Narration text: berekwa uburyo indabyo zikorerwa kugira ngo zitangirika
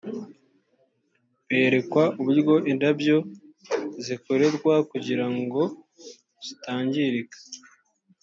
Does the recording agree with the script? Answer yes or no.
yes